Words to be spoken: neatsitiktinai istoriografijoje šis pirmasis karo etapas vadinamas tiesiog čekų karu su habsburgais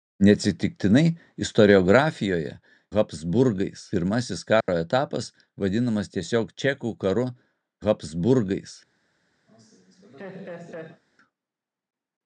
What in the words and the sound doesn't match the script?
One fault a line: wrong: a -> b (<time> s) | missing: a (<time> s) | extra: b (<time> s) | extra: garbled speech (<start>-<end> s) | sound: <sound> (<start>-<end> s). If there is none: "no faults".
wrong: šis -> habsburgais (3.0 s)
sound: dropout (4.6-4.7 s)
missing: su (7.3 s)
sound: laugh (9.5-11.0 s)